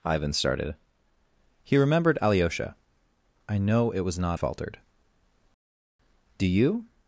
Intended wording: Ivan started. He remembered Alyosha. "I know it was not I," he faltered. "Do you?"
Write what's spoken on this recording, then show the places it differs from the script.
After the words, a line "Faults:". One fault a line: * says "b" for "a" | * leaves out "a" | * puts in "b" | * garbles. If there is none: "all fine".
Ivan started. He remembered Alyosha. "I know it was not faltered. "Do you?"
Faults:
* leaves out "I he"